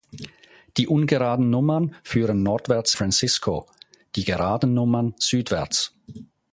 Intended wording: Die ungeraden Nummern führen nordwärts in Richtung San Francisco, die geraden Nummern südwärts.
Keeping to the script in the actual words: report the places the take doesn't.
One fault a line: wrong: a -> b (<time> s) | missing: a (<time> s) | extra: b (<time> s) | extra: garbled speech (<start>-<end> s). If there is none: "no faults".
missing: in Richtung San (3.0 s)